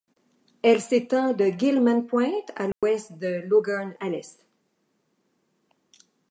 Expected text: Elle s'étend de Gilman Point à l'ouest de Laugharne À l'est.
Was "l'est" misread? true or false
false